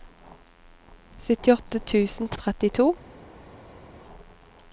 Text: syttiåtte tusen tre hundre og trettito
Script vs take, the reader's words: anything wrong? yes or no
yes